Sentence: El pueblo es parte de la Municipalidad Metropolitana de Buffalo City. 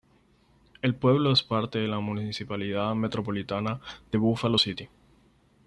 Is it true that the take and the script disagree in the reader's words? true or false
false